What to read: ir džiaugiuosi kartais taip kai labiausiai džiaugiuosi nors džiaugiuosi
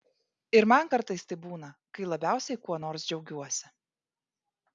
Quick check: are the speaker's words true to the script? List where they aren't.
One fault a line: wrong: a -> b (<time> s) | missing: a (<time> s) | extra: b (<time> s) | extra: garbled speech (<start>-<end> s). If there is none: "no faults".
wrong: džiaugiuosi -> man (0.7 s)
extra: būna (1.5 s)
wrong: džiaugiuosi -> kuo (2.7 s)